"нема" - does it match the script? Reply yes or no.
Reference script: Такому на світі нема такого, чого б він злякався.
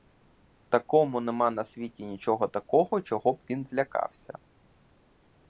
no